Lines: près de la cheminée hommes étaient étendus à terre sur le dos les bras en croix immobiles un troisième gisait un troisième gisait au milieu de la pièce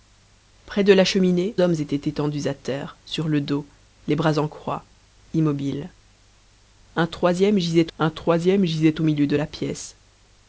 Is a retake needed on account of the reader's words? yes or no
no